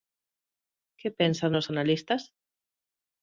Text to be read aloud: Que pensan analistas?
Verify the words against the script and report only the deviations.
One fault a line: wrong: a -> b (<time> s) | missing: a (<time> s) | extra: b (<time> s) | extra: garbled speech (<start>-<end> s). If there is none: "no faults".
extra: os (1.6 s)